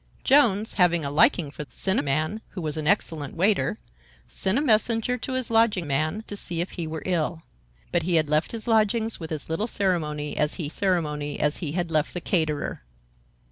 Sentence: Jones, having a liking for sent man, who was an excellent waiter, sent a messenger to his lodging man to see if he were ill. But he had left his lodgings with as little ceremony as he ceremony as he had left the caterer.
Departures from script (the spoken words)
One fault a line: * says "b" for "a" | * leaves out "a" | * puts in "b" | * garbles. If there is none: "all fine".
all fine